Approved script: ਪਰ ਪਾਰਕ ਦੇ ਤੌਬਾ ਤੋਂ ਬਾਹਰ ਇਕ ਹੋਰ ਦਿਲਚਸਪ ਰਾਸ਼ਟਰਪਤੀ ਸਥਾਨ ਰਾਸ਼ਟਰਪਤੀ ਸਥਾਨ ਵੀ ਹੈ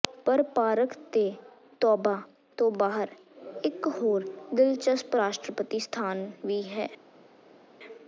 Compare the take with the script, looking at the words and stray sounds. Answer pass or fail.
fail